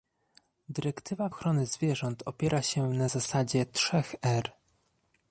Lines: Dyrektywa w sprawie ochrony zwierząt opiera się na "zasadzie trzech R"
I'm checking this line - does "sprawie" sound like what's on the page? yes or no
no